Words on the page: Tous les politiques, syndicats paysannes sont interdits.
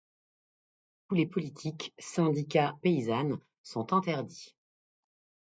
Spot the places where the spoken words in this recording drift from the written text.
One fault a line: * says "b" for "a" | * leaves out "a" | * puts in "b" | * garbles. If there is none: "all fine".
all fine